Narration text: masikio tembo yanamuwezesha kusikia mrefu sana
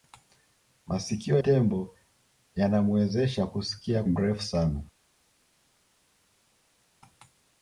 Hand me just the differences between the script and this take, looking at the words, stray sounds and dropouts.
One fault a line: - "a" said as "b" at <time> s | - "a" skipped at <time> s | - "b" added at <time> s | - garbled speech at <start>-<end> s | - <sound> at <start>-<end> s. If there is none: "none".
none